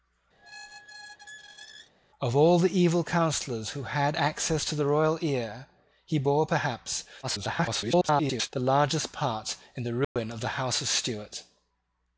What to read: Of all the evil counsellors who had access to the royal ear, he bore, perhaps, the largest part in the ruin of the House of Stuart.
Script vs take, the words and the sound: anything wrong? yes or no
yes